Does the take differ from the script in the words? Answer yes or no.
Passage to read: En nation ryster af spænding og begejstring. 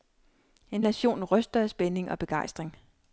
no